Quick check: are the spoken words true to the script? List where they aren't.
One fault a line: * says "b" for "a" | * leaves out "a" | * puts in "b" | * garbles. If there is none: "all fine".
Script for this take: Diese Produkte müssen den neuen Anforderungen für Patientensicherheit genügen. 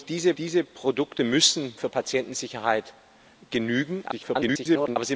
* puts in "diese"
* leaves out "den neuen Anforderungen"
* garbles